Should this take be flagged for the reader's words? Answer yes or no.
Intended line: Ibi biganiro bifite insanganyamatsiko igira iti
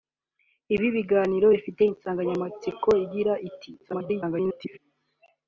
yes